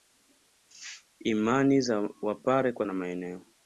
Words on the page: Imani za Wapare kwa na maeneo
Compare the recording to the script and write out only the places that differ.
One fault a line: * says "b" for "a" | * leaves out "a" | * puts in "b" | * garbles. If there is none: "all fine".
all fine